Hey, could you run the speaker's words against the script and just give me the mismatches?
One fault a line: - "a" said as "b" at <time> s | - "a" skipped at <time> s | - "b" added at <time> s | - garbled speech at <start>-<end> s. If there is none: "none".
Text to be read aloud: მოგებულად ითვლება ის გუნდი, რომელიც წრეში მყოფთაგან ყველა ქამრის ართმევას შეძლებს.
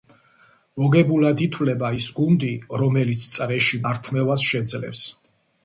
- "მყოფთაგან ყველა ქამრის" skipped at 3.8 s